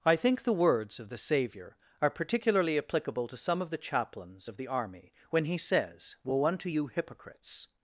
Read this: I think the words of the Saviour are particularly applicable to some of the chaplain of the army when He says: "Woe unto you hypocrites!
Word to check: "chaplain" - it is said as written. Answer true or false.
false